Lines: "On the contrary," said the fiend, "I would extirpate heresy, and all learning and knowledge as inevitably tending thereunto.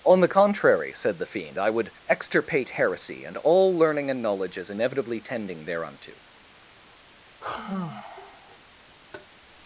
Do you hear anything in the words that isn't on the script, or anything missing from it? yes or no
no